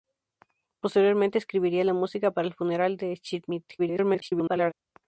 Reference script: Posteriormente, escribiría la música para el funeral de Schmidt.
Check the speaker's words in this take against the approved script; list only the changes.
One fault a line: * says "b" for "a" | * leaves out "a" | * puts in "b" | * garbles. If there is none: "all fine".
* garbles